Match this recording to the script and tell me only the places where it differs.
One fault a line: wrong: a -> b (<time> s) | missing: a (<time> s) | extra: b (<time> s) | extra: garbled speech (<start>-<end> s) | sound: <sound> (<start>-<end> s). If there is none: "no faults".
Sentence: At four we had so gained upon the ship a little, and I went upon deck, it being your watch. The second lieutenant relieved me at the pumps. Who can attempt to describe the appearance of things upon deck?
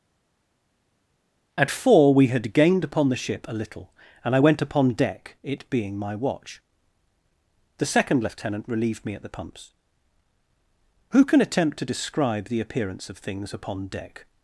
missing: so (2.5 s)
wrong: your -> my (6.0 s)